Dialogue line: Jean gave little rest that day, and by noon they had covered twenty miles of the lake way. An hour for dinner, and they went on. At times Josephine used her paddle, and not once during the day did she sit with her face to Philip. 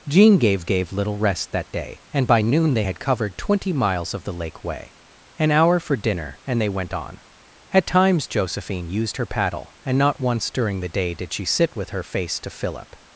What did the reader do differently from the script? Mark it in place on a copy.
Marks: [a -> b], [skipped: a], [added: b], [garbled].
Jean gave [added: gave] little rest that day, and by noon they had covered twenty miles of the lake way. An hour for dinner, and they went on. At times Josephine used her paddle, and not once during the day did she sit with her face to Philip.